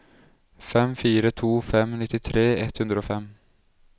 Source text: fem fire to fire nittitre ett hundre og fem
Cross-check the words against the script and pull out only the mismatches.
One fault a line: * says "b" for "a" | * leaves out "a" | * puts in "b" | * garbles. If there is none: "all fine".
* says "fem" for "fire"